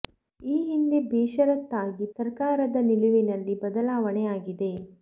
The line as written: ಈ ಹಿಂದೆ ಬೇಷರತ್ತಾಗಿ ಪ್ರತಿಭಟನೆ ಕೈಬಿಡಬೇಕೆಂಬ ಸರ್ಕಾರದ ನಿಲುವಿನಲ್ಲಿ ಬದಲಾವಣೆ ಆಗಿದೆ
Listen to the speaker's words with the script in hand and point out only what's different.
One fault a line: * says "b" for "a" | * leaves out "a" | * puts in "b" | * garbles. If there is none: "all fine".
* leaves out "ಪ್ರತಿಭಟನೆ ಕೈಬಿಡಬೇಕೆಂಬ"